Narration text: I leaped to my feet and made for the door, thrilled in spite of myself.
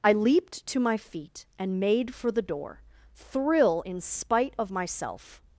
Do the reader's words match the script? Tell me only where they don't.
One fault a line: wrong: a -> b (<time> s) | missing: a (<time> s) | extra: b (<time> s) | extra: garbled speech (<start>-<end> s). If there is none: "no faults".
wrong: thrilled -> thrill (3.1 s)